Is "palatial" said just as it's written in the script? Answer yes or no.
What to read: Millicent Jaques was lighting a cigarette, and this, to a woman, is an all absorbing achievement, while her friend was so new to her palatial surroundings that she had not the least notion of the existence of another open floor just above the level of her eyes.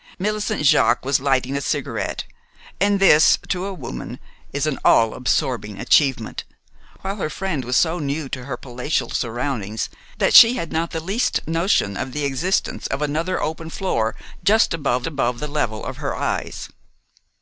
yes